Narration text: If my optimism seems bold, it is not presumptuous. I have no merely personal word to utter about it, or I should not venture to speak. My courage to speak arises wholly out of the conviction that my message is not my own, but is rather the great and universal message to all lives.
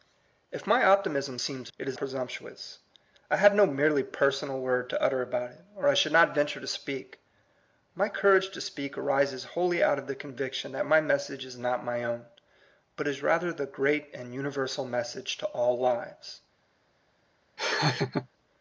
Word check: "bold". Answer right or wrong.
wrong